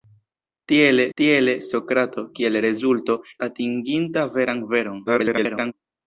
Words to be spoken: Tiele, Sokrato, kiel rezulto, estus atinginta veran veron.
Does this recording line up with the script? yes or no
no